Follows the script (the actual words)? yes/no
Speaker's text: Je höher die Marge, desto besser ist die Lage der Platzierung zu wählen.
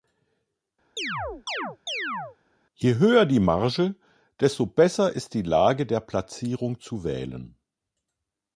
yes